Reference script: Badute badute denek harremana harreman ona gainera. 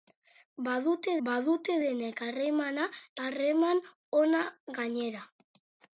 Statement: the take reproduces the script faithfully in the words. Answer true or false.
true